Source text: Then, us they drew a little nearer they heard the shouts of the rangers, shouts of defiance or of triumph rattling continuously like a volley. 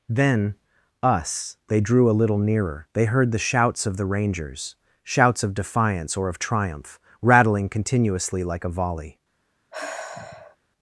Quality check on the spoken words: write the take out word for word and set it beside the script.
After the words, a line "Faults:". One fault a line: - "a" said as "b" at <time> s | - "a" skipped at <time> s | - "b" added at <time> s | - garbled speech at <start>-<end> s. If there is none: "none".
Then, us they drew a little nearer they heard the shouts of the rangers, shouts of defiance or of triumph rattling continuously like a volley.
Faults:
none